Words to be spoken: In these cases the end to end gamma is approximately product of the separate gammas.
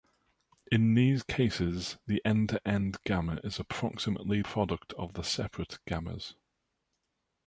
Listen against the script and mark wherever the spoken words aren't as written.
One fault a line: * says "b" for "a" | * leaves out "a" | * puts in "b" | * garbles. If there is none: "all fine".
all fine